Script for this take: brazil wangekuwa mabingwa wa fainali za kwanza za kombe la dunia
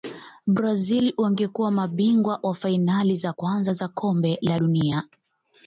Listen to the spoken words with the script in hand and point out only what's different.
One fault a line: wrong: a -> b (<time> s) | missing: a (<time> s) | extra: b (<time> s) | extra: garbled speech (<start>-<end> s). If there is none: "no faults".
no faults